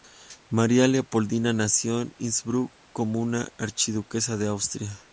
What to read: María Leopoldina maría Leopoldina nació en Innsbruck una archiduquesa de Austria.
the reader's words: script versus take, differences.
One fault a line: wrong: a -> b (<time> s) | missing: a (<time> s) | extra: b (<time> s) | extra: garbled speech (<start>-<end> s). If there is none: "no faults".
missing: maría Leopoldina (1.5 s)
extra: como (2.9 s)